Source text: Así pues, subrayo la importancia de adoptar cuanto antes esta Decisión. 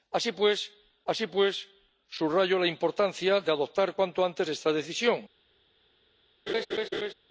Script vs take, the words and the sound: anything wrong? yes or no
yes